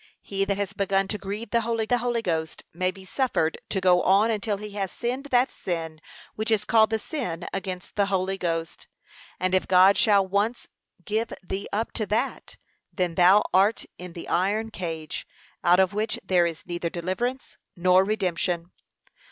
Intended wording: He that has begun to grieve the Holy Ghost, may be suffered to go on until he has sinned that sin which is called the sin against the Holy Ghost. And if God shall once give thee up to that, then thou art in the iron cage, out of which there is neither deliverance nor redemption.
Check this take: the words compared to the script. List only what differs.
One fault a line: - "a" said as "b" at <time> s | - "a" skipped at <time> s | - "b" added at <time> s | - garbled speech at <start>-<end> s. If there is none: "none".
- "the Holy" added at 1.9 s